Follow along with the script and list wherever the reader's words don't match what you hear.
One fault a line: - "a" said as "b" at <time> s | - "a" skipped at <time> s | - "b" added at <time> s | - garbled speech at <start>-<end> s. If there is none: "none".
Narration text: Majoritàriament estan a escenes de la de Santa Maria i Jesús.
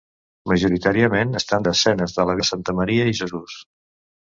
none